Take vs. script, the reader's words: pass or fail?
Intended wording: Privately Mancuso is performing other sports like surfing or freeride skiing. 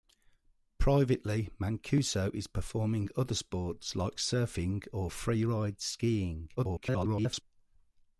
fail